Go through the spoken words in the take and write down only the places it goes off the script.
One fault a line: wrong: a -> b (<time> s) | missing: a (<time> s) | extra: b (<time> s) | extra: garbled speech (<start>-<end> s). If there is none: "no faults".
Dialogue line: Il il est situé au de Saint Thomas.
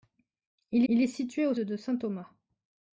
no faults